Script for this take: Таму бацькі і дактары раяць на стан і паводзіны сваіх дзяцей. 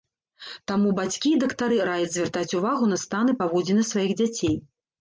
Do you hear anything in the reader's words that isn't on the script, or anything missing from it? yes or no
yes